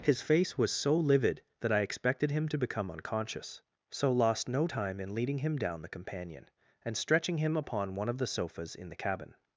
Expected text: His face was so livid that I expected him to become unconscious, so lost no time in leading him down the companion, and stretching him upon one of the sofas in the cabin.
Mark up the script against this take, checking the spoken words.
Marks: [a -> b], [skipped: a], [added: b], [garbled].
His face was so livid that I expected him to become unconscious, so lost no time in leading him down the companion, and stretching him upon one of the sofas in the cabin.